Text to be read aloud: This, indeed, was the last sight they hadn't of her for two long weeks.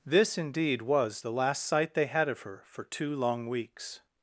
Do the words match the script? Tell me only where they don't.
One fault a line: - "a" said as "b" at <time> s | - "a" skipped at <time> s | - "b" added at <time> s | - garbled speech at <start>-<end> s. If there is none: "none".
- "hadn't" said as "had" at 2.1 s